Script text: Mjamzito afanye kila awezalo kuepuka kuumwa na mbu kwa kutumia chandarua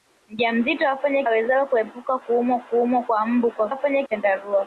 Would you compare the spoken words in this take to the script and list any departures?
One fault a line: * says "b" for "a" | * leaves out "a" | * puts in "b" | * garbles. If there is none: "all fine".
* leaves out "kila"
* puts in "kuumwa"
* says "afanye" for "kutumia"